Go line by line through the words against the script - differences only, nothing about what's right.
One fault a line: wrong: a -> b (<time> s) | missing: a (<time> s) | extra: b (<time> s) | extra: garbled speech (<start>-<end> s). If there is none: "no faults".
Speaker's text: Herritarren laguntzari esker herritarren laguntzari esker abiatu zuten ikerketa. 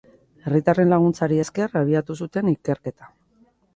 missing: herritarren laguntzari esker (1.7 s)